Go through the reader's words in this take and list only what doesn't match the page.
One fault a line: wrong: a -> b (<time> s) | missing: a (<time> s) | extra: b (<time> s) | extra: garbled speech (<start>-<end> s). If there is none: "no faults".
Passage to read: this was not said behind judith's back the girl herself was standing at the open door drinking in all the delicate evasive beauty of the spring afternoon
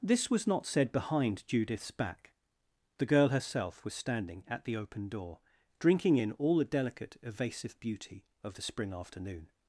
no faults